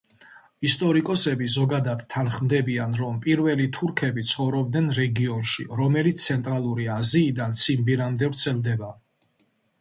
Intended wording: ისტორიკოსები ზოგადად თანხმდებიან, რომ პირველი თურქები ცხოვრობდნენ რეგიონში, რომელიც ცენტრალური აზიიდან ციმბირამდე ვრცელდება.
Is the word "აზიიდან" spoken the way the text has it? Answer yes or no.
yes